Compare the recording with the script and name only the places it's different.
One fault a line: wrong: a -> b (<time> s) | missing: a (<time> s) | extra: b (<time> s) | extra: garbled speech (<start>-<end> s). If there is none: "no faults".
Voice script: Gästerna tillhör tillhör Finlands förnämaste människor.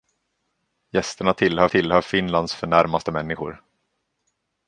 no faults